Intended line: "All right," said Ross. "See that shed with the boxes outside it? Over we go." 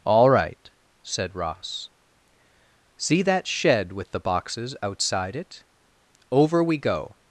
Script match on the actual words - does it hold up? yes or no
yes